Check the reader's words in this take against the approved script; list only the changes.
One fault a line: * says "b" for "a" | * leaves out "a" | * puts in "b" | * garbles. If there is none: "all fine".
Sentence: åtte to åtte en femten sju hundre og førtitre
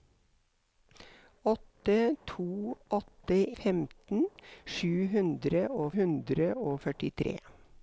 * leaves out "en"
* puts in "hundre og"